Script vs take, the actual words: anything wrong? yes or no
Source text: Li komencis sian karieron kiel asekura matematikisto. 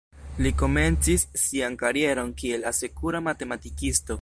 no